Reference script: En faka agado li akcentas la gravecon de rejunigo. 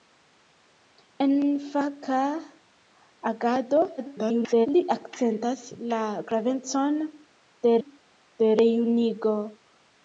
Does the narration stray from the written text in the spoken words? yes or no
yes